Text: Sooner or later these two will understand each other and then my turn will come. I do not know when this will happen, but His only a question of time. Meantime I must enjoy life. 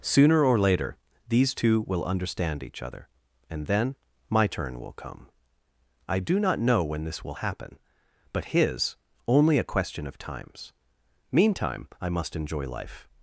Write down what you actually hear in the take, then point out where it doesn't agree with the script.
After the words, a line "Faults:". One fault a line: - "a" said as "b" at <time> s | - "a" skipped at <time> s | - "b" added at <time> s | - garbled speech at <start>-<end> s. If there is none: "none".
Sooner or later these two will understand each other and then my turn will come. I do not know when this will happen, but His only a question of times. Meantime I must enjoy life.
Faults:
- "time" said as "times" at 10.2 s